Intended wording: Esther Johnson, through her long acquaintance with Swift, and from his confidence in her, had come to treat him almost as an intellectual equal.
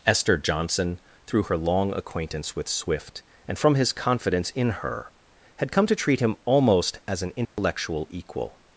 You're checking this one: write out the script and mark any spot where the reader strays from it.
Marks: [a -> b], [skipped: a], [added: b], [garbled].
Esther Johnson, through her long acquaintance with Swift, and from his confidence in her, had come to treat him almost as an intellectual equal.